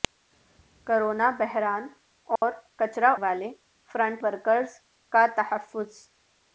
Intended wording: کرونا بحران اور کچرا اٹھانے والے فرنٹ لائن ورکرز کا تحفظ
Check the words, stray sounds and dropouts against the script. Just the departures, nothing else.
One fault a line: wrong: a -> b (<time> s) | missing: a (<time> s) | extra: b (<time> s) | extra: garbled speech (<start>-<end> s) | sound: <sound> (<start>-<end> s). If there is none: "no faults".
sound: dropout (2.4-2.4 s)
missing: اٹھانے (3.1 s)
missing: لائن (4.2 s)